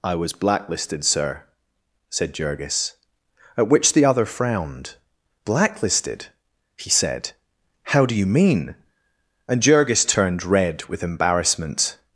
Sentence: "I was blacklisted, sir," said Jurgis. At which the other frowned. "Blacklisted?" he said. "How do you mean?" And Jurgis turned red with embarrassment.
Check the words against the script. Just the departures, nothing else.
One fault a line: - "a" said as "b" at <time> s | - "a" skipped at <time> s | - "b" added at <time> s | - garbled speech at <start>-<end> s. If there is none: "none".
none